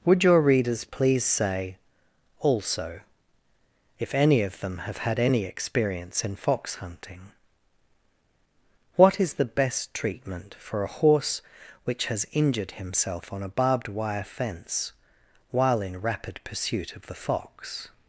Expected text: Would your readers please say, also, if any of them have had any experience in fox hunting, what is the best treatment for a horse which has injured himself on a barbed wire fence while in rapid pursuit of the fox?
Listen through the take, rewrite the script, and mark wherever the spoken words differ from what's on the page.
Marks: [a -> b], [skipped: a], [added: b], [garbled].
Would your readers please say, also, if any of them have had any experience in fox hunting, what is the best treatment for a horse which has injured himself on a barbed wire fence while in rapid pursuit of the fox?